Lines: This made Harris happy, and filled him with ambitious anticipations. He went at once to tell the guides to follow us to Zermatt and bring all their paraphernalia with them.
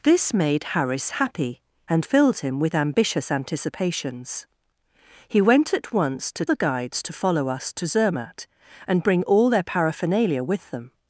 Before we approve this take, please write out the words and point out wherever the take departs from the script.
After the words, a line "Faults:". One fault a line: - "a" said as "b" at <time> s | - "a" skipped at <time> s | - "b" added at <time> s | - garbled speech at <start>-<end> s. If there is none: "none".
This made Harris happy, and filled him with ambitious anticipations. He went at once to the guides to follow us to Zermatt and bring all their paraphernalia with them.
Faults:
- "tell" skipped at 6.4 s